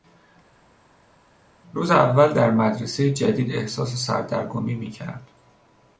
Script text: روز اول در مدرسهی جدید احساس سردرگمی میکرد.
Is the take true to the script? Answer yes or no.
yes